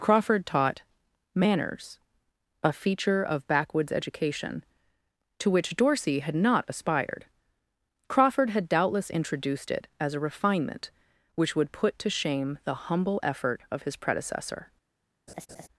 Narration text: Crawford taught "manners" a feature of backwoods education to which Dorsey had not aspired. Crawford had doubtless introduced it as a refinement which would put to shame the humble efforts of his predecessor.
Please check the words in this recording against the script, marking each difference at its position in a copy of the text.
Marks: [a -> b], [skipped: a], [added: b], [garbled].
Crawford taught "manners" a feature of backwoods education to which Dorsey had not aspired. Crawford had doubtless introduced it as a refinement which would put to shame the humble [efforts -> effort] of his predecessor.